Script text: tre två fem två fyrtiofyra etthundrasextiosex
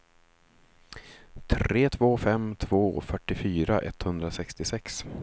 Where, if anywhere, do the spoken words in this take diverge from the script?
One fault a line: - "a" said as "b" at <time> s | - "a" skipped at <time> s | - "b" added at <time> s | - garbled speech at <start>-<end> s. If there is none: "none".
none